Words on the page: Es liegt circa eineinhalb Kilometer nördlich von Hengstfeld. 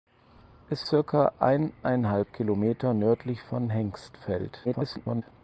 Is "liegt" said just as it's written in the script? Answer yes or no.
no